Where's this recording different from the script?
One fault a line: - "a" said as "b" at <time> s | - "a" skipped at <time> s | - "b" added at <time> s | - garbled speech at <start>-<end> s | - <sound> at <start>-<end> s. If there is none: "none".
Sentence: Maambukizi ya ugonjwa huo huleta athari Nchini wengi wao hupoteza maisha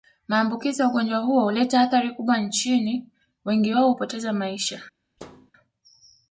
- "kubwa" added at 2.1 s
- thud at 5.2-5.5 s